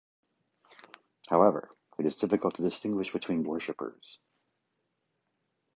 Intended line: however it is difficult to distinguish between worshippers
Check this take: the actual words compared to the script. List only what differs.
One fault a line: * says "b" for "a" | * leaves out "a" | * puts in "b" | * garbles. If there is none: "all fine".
all fine